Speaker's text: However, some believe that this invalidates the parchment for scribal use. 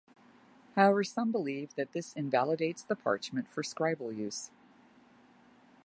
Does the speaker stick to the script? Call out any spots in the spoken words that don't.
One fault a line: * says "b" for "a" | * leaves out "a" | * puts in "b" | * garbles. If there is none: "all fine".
all fine